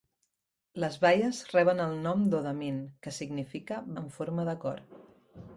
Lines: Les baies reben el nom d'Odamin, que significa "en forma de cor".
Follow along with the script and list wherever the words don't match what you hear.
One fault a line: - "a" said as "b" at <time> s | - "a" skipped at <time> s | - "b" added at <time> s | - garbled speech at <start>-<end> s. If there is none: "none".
none